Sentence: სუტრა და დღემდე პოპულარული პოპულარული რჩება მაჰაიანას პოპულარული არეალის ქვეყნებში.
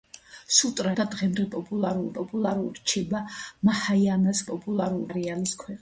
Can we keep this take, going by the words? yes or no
yes